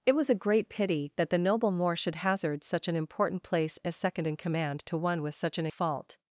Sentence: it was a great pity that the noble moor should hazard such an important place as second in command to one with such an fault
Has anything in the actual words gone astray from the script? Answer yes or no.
no